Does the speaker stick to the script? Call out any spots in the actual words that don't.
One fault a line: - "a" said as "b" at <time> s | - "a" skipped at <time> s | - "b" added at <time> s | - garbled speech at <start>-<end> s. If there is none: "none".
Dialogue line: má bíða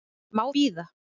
none